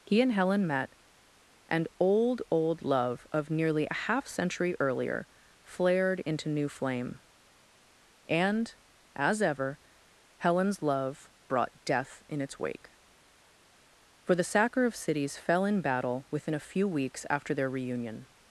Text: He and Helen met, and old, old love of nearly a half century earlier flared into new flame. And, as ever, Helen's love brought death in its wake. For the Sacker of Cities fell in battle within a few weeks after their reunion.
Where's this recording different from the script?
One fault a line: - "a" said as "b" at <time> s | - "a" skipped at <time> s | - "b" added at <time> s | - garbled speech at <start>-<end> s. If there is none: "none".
none